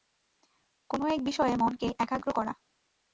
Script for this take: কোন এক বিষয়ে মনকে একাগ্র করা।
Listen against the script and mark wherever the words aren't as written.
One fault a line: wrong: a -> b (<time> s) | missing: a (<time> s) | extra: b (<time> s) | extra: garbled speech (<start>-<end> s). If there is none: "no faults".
no faults